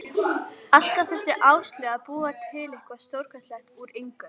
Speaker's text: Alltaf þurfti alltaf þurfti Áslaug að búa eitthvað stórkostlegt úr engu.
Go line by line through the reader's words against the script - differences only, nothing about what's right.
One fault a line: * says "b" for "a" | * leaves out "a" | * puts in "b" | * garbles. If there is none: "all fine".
* leaves out "alltaf þurfti"
* puts in "til"